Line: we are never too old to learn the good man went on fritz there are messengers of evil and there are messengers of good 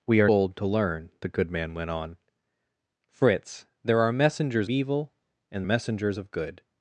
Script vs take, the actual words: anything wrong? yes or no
yes